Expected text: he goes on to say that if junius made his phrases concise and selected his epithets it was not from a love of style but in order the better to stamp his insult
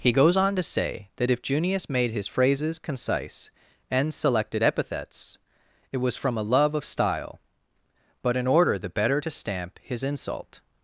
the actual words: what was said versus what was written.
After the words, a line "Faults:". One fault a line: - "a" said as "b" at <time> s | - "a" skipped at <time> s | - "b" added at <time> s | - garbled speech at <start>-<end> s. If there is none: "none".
he goes on to say that if junius made his phrases concise and selected epithets it was from a love of style but in order the better to stamp his insult
Faults:
- "his" skipped at 4.6 s
- "not" skipped at 6.1 s